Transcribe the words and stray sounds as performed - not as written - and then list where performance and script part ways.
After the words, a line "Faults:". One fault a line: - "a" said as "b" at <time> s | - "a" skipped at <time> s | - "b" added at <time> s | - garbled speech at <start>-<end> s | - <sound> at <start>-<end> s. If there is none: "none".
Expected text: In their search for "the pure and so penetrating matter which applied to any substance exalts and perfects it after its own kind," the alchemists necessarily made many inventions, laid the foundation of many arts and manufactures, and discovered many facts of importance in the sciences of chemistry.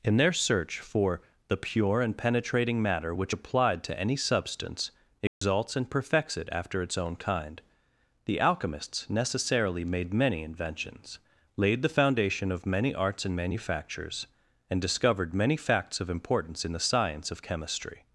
In their search for "the pure and penetrating matter which applied to any substance exalts and perfects it after its own kind," the alchemists necessarily made many inventions, laid the foundation of many arts and manufactures, and discovered many facts of importance in the science of chemistry.
Faults:
- "so" skipped at 2.2 s
- dropout at 5.3-5.4 s
- "sciences" said as "science" at 16.9 s